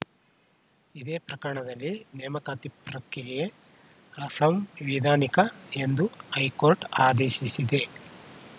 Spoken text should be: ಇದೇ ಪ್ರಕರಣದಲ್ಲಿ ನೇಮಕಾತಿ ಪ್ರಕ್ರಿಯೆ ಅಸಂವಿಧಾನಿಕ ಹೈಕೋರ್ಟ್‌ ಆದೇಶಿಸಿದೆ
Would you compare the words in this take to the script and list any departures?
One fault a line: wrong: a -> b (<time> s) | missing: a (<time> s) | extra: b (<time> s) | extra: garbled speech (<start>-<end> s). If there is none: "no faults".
extra: ಎಂದು (5.8 s)